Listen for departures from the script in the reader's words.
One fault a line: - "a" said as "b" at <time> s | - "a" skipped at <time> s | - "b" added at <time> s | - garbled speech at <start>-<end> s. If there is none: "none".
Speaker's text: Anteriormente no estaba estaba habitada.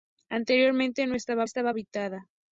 none